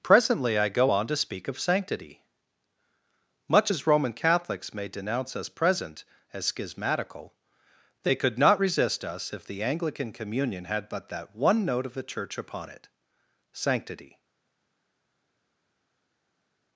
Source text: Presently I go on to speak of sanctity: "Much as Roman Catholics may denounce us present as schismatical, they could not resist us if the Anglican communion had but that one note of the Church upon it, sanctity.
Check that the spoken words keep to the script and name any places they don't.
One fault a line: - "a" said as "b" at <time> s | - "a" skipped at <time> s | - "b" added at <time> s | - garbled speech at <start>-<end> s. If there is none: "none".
none